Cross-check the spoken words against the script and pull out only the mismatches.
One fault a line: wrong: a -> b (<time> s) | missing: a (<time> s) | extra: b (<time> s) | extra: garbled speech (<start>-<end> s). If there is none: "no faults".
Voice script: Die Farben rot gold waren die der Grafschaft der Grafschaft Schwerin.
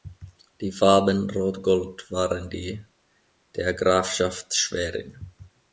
missing: der Grafschaft (4.6 s)